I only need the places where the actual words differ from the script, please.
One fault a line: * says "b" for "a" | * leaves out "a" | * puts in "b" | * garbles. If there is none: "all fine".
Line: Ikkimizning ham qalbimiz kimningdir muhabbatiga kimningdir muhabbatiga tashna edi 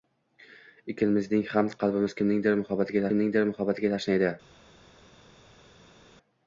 all fine